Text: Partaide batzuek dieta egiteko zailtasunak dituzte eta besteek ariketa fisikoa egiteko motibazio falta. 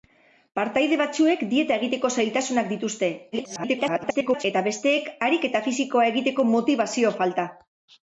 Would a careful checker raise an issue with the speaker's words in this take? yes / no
yes